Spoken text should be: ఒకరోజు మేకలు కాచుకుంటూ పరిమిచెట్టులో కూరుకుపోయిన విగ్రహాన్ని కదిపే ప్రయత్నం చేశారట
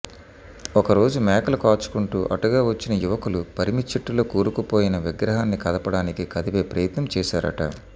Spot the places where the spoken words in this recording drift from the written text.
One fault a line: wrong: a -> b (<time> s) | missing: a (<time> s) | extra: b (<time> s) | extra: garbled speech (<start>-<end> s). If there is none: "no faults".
extra: అటుగా వచ్చిన యువకులు (2.4 s)
extra: కదపడానికి (5.7 s)